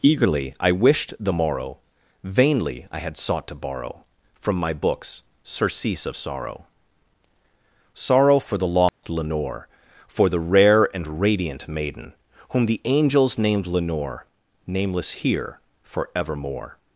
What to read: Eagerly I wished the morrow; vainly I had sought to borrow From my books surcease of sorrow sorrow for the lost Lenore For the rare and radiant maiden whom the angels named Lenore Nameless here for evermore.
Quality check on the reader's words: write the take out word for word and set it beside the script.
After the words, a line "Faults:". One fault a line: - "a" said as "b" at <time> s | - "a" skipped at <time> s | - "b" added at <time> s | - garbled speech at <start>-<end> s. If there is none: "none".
Eagerly I wished the morrow; vainly I had sought to borrow From my books surcease of sorrow sorrow for the lost Lenore For the rare and radiant maiden whom the angels named Lenore Nameless here for evermore.
Faults:
none